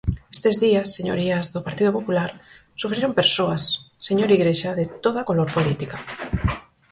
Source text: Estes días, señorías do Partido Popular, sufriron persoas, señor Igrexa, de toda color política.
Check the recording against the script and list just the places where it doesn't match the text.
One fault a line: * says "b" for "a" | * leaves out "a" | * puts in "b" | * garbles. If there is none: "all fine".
all fine